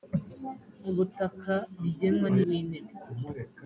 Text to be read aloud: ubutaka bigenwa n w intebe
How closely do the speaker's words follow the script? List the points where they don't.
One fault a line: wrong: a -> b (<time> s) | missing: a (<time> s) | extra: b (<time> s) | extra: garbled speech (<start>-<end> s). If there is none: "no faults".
no faults